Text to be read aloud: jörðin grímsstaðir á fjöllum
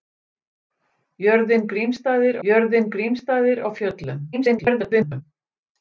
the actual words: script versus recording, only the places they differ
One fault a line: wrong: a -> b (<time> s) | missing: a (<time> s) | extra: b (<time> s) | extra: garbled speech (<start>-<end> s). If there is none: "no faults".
extra: jörðin grímsstaðir (2.5 s)
extra: garbled speech (4.3-5.2 s)